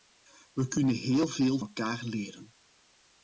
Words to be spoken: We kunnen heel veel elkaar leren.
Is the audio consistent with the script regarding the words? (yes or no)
yes